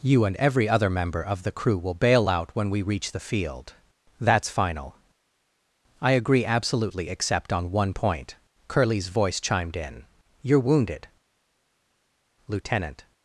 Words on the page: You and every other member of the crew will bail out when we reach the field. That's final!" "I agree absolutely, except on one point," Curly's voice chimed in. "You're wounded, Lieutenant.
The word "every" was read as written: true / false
true